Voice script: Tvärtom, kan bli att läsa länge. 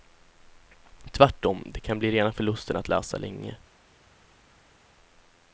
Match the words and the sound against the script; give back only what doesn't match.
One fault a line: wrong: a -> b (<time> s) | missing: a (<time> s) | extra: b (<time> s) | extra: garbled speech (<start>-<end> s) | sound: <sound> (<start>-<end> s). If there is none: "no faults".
extra: det (1.6 s)
extra: rena förlusten (2.1 s)